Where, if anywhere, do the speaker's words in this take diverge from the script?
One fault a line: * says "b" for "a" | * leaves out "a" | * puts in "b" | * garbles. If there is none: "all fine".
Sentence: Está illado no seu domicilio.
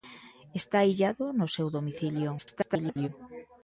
* garbles